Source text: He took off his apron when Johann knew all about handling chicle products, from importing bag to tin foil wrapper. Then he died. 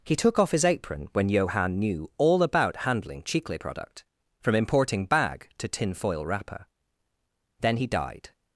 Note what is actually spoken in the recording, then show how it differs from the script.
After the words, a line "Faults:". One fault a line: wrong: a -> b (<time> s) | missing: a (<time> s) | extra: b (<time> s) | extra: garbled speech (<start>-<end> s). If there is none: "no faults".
He took off his apron when Johann knew all about handling chicle product, from importing bag to tin foil wrapper. Then he died.
Faults:
wrong: products -> product (3.6 s)